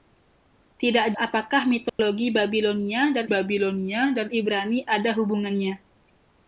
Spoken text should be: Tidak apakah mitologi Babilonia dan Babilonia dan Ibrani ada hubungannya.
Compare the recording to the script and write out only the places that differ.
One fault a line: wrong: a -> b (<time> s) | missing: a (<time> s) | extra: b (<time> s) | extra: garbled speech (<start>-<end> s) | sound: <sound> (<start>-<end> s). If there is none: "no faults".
sound: dropout (1.9-2.0 s)